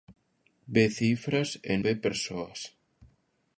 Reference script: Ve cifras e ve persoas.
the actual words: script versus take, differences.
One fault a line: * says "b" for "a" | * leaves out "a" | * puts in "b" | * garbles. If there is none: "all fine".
all fine